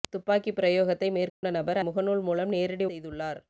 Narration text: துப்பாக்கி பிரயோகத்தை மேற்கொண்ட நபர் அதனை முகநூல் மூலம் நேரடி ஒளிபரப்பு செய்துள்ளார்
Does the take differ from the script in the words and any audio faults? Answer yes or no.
yes